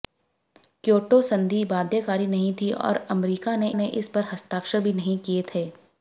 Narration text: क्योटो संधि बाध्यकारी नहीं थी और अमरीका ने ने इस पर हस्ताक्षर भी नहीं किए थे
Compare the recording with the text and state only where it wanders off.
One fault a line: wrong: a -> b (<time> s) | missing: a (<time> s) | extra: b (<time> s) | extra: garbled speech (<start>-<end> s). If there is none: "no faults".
no faults